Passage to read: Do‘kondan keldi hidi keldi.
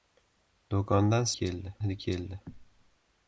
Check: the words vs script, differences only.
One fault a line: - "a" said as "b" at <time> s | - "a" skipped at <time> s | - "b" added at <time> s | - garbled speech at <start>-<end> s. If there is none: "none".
none